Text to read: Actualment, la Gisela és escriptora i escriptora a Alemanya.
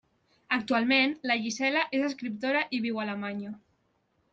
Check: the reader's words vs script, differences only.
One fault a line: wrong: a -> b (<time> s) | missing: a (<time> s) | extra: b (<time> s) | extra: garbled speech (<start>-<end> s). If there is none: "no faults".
wrong: escriptora -> viu (2.9 s)